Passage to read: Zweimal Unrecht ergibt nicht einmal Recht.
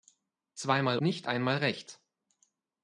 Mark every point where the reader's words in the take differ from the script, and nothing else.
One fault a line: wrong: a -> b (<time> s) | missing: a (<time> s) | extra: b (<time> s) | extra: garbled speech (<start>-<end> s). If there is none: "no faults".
missing: Unrecht ergibt (1.0 s)